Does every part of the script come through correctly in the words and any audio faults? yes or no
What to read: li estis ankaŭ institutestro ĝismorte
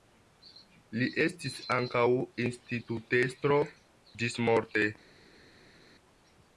yes